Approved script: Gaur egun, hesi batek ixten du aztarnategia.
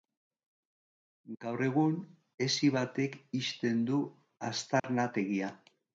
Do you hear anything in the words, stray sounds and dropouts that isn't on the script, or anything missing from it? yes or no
yes